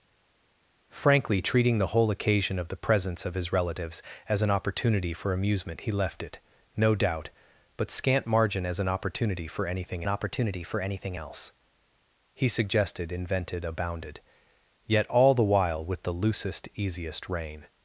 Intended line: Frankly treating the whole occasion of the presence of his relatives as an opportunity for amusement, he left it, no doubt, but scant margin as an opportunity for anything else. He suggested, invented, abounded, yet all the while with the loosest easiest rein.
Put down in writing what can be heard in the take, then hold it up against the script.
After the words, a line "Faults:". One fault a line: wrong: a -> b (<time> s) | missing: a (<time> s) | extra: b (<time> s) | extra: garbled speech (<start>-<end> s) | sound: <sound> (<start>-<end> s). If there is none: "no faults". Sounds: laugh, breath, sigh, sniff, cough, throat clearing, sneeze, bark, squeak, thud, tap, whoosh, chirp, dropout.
Frankly treating the whole occasion of the presence of his relatives as an opportunity for amusement, he left it, no doubt, but scant margin as an opportunity for anything opportunity for anything else. He suggested, invented, abounded, yet all the while with the loosest easiest rein.
Faults:
extra: opportunity for anything (10.1 s)